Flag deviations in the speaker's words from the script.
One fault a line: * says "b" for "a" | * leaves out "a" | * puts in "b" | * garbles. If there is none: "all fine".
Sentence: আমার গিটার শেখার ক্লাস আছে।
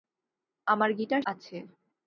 * leaves out "শেখার ক্লাস"